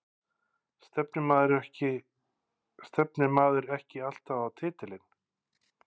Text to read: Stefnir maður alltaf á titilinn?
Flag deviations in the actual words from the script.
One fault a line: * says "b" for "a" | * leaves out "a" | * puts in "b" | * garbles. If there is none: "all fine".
* puts in "ekki"